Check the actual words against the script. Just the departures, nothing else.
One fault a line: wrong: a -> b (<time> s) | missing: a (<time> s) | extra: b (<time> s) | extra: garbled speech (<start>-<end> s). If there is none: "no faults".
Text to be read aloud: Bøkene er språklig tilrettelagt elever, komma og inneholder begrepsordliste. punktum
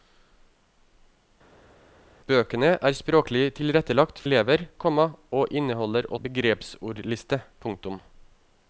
no faults